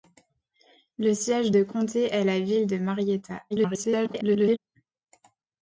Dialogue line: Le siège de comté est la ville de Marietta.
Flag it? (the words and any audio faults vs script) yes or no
yes